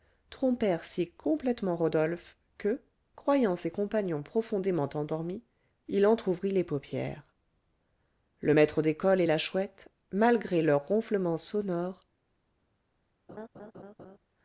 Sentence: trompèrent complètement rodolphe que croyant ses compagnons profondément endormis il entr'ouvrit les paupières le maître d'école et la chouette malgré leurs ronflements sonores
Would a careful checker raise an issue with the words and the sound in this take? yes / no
yes